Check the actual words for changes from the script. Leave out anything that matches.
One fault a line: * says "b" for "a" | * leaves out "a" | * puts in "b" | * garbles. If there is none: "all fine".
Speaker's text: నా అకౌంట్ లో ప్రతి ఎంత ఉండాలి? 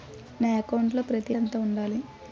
all fine